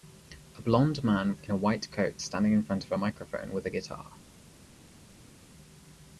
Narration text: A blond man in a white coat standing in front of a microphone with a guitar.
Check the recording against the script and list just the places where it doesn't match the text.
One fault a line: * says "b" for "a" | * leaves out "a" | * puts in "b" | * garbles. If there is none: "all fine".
all fine